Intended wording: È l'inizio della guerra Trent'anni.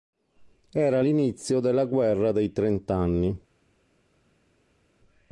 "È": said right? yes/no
no